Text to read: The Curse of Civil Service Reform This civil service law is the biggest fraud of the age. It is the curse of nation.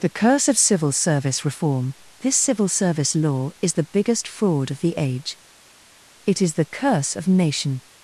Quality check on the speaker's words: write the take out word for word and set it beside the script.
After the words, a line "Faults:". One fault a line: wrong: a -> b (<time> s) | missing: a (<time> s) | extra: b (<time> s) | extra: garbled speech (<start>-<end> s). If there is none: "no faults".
The Curse of Civil Service Reform This civil service law is the biggest fraud of the age. It is the curse of nation.
Faults:
no faults